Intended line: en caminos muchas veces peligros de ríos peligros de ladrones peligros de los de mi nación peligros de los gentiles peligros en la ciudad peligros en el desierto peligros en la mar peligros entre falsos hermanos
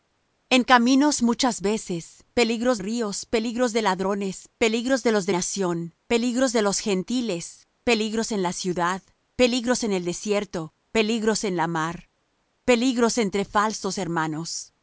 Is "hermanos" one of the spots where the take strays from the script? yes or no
no